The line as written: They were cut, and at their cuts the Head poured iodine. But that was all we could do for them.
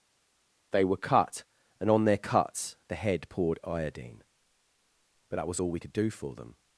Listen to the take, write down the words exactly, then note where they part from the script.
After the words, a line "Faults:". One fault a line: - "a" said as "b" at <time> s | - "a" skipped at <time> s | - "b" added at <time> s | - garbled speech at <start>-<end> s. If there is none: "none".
They were cut, and on their cuts the Head poured iodine. But that was all we could do for them.
Faults:
- "at" said as "on" at 1.9 s